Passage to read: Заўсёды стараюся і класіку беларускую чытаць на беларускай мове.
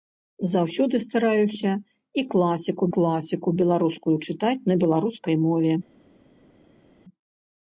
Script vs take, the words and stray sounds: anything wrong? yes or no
yes